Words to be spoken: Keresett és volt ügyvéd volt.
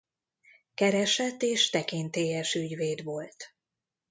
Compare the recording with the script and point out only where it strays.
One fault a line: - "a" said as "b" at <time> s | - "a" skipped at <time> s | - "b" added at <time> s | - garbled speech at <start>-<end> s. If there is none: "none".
- "volt" said as "tekintélyes" at 1.7 s